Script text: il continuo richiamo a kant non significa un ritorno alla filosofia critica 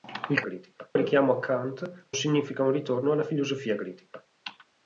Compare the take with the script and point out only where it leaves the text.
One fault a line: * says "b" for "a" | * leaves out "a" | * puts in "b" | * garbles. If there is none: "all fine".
* says "critica" for "continuo"
* leaves out "non"